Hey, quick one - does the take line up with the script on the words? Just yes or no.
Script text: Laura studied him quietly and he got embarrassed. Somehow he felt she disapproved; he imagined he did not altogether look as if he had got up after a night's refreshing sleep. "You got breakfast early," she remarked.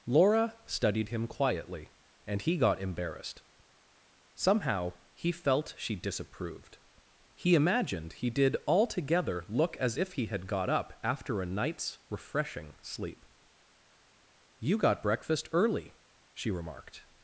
no